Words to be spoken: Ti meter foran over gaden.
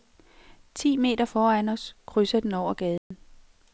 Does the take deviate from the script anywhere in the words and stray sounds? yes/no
yes